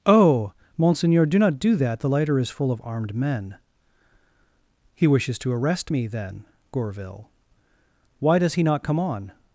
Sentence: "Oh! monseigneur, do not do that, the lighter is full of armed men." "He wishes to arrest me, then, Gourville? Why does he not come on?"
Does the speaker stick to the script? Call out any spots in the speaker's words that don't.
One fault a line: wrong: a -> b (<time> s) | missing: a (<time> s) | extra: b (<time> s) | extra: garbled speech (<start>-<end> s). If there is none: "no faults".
no faults